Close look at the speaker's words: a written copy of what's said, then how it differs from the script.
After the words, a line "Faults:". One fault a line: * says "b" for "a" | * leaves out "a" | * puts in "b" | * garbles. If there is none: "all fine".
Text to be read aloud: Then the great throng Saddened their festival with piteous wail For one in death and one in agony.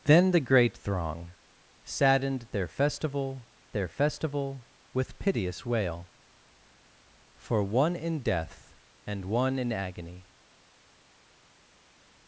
Then the great throng Saddened their festival their festival with piteous wail For one in death and one in agony.
Faults:
* puts in "their festival"